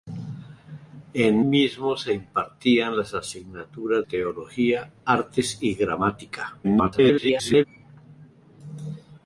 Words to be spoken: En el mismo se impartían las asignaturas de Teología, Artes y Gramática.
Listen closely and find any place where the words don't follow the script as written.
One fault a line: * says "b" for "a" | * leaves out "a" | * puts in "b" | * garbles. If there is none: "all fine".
* leaves out "el"
* leaves out "de"
* garbles